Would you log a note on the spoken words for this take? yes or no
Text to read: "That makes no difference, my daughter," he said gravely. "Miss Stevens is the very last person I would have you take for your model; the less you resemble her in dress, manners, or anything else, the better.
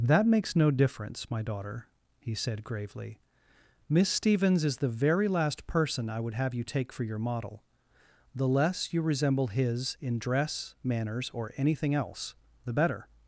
yes